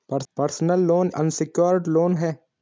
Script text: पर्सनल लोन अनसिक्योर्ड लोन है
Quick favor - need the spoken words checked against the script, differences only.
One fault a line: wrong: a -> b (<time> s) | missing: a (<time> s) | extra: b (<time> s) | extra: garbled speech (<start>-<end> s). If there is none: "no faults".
no faults